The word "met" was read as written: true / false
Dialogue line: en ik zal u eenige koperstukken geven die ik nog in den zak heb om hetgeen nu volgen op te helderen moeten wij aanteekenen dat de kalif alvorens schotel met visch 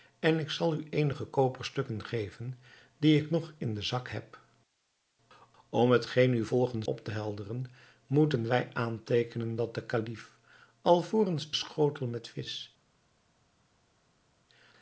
true